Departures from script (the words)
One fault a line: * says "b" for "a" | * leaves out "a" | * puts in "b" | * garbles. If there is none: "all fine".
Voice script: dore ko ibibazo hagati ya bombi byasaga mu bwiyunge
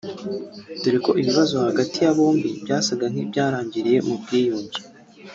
* puts in "nk'ibyarangiriye"